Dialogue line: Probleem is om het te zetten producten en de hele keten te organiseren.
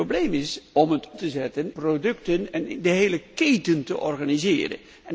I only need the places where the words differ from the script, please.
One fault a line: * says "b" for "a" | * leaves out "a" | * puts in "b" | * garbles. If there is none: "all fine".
all fine